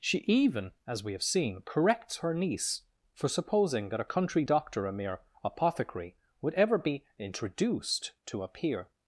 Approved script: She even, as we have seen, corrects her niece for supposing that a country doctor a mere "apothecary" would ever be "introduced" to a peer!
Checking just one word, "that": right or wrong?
right